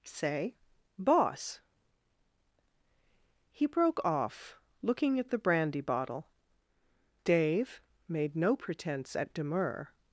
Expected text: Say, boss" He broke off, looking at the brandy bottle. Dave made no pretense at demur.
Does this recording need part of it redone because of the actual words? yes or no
no